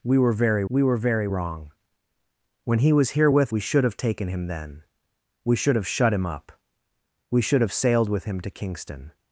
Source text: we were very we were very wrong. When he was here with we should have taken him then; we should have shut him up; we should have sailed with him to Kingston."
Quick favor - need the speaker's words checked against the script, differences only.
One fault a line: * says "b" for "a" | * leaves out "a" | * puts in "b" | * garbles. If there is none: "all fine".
all fine